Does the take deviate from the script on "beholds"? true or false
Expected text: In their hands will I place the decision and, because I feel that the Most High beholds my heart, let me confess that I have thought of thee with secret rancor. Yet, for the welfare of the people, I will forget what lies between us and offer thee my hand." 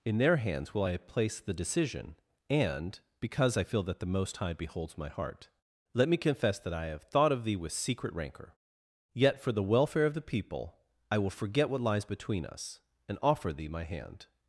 false